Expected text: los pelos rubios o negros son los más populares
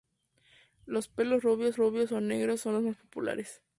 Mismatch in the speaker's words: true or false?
true